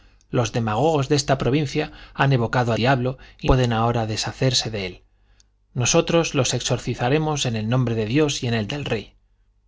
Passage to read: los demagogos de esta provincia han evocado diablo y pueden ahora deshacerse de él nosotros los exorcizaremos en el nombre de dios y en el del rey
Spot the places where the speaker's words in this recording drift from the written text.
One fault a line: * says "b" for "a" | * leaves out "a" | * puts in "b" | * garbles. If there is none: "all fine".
all fine